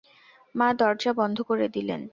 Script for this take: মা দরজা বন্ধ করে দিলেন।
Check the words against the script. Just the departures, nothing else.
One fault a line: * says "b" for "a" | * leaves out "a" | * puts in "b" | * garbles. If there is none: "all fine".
all fine